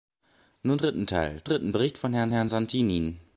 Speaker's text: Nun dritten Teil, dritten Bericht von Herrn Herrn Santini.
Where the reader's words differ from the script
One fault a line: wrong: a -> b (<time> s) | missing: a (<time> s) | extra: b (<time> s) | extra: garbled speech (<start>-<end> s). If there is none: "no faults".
no faults